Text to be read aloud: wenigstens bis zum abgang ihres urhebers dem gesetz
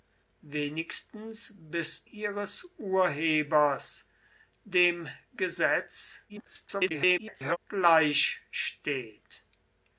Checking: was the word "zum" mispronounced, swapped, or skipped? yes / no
yes